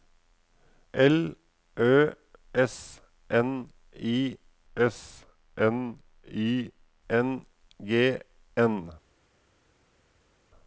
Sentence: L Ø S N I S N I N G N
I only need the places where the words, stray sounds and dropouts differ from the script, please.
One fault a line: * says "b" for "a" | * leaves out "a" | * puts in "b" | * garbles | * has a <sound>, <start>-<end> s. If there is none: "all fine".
all fine